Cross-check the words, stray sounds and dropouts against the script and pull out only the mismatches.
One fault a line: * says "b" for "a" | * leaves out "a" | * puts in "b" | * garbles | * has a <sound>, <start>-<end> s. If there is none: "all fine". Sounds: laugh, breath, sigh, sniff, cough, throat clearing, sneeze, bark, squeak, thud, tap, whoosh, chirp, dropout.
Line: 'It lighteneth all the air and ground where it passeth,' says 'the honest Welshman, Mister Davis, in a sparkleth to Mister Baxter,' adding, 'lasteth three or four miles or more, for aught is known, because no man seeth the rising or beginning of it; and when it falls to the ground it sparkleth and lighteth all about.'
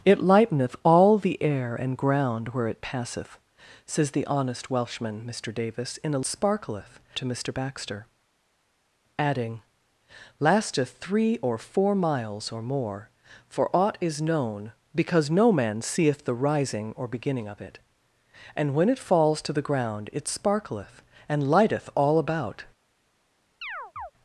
* has a chirp, 23.6-24.1 s